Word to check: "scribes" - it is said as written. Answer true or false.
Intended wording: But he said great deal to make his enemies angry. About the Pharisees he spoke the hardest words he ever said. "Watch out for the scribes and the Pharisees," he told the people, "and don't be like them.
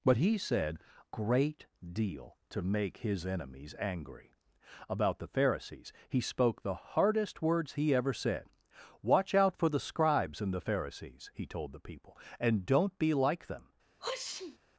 true